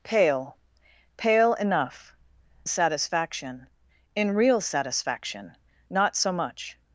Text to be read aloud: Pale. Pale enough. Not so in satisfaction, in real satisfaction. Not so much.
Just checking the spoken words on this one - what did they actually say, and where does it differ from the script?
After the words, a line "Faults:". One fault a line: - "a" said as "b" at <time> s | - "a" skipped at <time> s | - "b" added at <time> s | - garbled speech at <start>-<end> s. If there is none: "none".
Pale. Pale enough. Satisfaction, in real satisfaction. Not so much.
Faults:
- "Not so in" skipped at 2.1 s